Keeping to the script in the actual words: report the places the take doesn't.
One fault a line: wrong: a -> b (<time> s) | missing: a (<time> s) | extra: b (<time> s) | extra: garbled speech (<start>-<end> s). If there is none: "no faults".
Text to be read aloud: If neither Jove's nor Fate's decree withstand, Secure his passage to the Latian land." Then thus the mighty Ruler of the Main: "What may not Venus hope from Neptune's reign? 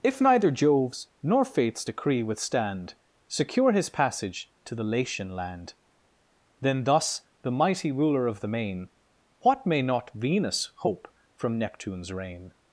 no faults